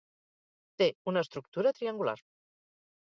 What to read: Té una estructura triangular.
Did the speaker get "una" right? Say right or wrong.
right